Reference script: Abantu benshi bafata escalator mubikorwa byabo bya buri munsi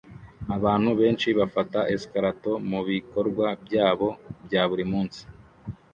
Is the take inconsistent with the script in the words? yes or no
no